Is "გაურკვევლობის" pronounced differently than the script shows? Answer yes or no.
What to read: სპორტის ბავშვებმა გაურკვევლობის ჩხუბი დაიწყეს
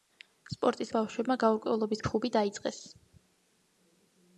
no